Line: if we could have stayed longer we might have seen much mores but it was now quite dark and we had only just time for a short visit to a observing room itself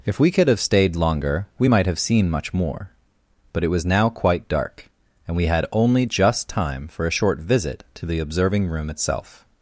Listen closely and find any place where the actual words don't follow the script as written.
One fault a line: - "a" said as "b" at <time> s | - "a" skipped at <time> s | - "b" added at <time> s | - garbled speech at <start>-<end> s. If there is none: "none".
- "mores" said as "more" at 2.5 s
- "a" said as "the" at 8.1 s